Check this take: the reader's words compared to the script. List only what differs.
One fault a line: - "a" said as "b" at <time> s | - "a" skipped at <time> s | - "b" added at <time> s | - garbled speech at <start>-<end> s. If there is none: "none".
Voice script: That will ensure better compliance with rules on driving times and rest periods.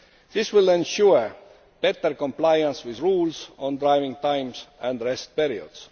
- "That" said as "This" at 0.3 s